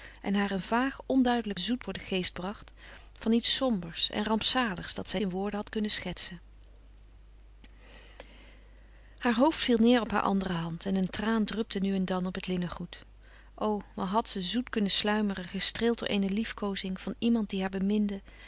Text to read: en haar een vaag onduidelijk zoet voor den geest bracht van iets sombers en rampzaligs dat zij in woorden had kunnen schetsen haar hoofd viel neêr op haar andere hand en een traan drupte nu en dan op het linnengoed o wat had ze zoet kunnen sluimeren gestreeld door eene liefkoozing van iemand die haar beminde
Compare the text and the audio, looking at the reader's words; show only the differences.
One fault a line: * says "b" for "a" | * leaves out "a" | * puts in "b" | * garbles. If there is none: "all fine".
all fine